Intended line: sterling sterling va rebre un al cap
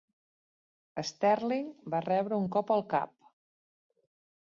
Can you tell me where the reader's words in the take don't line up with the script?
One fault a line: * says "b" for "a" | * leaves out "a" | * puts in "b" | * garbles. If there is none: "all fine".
* leaves out "sterling"
* puts in "cop"